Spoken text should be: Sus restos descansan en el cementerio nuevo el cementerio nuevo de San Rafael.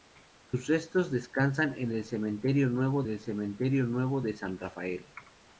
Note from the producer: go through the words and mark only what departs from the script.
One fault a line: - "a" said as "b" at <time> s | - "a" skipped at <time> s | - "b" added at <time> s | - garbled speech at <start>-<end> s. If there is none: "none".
none